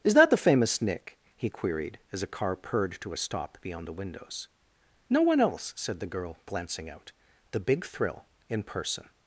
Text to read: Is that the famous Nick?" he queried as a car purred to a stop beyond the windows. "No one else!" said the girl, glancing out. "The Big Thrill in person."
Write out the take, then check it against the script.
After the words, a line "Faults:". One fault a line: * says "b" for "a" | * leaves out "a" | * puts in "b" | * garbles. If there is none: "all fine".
Is that the famous Nick?" he queried as a car purred to a stop beyond the windows. "No one else!" said the girl, glancing out. "The Big Thrill in person."
Faults:
all fine